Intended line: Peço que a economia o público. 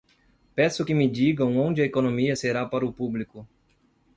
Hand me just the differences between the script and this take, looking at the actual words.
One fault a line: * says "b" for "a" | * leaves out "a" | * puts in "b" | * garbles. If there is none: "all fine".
* puts in "me digam onde"
* puts in "será para"